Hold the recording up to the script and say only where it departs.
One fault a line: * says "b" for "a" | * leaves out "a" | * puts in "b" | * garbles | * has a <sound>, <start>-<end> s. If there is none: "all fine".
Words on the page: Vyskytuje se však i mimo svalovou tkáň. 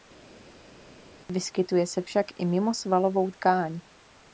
all fine